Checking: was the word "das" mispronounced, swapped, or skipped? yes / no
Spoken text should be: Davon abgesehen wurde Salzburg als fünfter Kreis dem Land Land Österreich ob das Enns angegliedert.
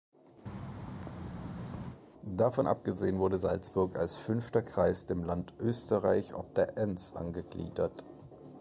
yes